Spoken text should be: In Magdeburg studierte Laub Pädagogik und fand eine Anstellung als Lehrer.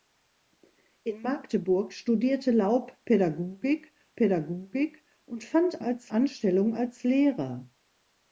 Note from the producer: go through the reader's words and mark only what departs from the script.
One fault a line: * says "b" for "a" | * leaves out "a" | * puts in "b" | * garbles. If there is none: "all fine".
* puts in "Pädagogik"
* says "als" for "eine"